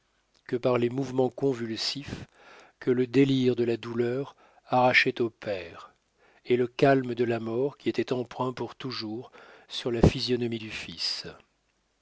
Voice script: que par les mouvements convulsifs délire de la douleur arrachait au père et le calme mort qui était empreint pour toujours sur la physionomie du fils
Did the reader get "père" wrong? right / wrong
right